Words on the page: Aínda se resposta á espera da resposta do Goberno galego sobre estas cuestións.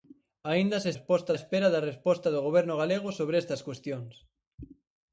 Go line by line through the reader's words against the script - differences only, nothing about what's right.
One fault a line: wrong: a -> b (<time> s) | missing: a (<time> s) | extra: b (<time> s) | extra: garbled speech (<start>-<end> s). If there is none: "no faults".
no faults